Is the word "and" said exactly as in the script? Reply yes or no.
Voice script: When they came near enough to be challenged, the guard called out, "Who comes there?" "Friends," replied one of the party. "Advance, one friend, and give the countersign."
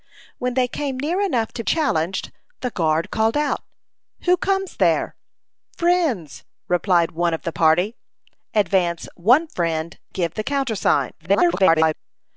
no